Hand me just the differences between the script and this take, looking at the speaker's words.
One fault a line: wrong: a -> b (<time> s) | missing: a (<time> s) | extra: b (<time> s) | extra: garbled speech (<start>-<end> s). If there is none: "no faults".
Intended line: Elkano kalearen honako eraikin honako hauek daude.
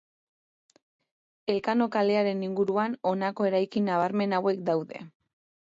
extra: inguruan (2.5 s)
wrong: honako -> nabarmen (3.9 s)